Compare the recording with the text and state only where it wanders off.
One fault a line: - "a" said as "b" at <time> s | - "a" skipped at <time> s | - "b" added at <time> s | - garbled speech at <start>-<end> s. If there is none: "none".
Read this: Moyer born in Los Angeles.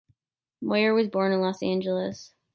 - "was" added at 0.9 s